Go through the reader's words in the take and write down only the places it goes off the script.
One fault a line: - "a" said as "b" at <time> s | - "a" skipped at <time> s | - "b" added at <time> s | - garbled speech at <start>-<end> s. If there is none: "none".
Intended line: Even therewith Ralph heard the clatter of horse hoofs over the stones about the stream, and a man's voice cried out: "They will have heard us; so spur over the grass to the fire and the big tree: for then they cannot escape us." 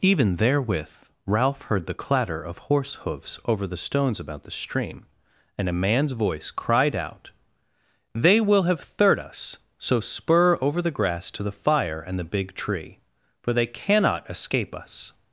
- "heard" said as "third" at 8.8 s
- "then" skipped at 13.5 s